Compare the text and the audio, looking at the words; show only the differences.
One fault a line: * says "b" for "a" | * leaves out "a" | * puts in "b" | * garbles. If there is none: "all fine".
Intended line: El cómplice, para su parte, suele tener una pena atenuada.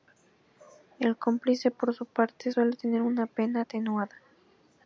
* says "por" for "para"